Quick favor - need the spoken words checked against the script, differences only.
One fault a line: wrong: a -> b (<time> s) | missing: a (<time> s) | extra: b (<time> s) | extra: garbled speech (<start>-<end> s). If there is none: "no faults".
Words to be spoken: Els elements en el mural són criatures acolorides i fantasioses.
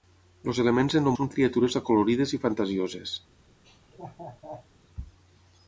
missing: mural (1.1 s)